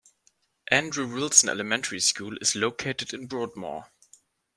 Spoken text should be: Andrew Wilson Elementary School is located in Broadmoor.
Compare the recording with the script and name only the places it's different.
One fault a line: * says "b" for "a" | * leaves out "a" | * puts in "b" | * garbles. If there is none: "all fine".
all fine